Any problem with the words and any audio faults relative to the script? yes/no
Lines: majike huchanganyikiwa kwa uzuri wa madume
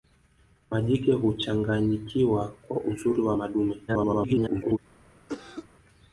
yes